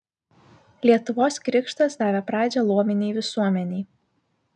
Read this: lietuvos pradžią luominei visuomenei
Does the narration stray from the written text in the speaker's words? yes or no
yes